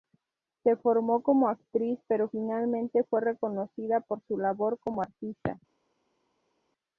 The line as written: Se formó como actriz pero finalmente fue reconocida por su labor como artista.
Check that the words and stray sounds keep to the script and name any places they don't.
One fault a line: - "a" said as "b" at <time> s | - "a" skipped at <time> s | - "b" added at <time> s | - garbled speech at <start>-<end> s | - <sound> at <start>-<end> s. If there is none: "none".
none